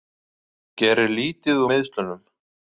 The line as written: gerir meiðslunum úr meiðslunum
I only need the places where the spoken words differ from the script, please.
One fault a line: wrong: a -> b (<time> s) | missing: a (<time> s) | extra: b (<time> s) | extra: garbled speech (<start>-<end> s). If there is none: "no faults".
wrong: meiðslunum -> lítið (1.2 s)